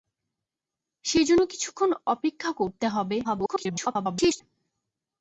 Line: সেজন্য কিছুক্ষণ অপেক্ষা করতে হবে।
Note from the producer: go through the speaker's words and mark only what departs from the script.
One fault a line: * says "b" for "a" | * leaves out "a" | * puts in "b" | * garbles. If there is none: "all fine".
* garbles